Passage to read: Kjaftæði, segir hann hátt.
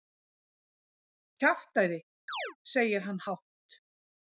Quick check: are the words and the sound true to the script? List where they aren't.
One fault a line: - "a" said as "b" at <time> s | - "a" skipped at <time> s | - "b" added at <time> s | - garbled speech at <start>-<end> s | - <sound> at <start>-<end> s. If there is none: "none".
- chirp at 2.3-2.6 s